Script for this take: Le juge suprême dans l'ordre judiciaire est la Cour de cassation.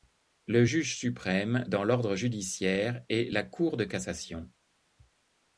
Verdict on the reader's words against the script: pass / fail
pass